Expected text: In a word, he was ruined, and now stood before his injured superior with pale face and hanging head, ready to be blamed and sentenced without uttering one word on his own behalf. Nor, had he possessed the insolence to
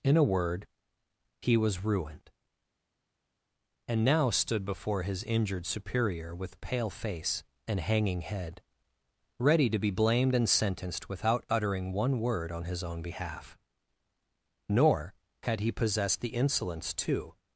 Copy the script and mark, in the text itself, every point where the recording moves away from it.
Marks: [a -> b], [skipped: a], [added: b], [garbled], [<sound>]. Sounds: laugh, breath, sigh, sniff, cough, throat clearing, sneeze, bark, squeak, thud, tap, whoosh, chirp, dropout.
In a word, he was ruined, and now stood before his injured superior with pale face and hanging head, ready to be blamed and sentenced without uttering one word on his own behalf. Nor, had he possessed the insolence to